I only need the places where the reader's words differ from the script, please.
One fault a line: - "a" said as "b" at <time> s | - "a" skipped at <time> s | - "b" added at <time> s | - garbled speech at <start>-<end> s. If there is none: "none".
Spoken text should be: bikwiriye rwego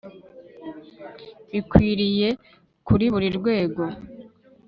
- "kuri buri" added at 2.9 s